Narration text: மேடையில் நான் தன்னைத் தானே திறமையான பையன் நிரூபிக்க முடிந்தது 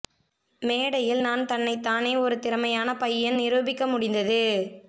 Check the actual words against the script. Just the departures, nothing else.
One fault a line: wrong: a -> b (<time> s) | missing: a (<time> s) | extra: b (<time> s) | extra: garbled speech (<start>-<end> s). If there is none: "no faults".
extra: ஒரு (2.2 s)